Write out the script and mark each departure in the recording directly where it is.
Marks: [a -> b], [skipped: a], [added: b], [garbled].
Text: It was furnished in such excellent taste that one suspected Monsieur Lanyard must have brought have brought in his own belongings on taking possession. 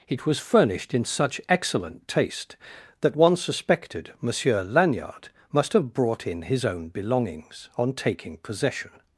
It was furnished in such excellent taste that one suspected Monsieur Lanyard must have brought [skipped: have brought] in his own belongings on taking possession.